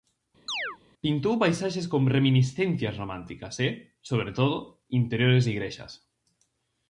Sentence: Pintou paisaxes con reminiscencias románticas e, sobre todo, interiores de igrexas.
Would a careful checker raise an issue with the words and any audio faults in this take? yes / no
yes